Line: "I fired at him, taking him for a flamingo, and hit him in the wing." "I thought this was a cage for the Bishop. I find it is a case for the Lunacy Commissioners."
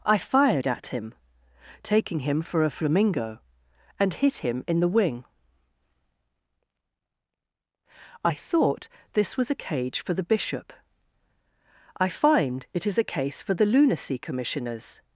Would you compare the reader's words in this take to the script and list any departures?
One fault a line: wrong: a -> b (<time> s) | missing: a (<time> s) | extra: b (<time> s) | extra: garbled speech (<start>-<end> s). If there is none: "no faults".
no faults